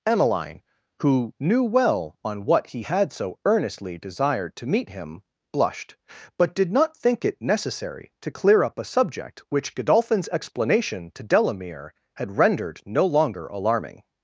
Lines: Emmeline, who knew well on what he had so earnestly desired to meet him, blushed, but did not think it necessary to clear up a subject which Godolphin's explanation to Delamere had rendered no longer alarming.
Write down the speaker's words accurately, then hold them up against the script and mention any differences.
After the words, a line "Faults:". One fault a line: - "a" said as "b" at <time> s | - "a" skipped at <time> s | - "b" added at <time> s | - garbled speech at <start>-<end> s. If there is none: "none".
Emmeline, who knew well on what he had so earnestly desired to meet him, blushed, but did not think it necessary to clear up a subject which Godolphin's explanation to Delamere had rendered no longer alarming.
Faults:
none